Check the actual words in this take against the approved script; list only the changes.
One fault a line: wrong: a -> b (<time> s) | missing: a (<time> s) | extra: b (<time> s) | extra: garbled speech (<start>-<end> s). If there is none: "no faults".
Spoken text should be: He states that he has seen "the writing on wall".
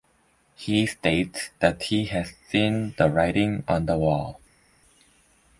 extra: the (3.8 s)